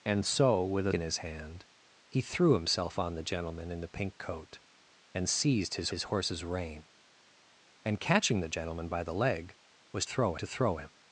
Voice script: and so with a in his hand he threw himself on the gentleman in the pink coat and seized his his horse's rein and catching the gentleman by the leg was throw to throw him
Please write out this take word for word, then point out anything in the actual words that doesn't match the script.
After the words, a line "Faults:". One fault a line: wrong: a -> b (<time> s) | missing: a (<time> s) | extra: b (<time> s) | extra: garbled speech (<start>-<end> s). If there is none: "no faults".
and so with a in his hand he threw himself on the gentleman in the pink coat and seized his his horse's rein and catching the gentleman by the leg was throw to throw him
Faults:
no faults